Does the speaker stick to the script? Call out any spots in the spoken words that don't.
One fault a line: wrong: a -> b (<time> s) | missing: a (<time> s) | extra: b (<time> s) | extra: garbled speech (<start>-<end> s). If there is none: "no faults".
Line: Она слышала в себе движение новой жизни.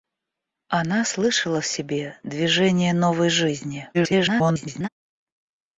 extra: garbled speech (3.9-4.9 s)